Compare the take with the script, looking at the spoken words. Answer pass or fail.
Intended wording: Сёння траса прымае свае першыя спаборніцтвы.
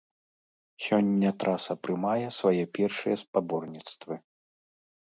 pass